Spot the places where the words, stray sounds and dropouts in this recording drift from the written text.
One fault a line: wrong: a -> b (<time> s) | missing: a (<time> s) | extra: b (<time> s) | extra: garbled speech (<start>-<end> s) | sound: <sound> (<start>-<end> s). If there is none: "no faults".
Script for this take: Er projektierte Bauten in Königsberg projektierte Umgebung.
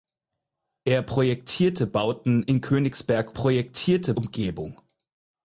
no faults